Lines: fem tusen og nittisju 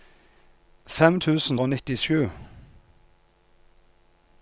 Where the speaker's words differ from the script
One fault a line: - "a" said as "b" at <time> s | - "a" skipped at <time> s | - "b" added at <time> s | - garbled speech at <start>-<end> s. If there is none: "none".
none